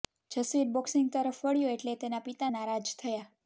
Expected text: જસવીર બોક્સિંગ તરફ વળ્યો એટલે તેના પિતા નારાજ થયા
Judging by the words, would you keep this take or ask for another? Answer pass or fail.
pass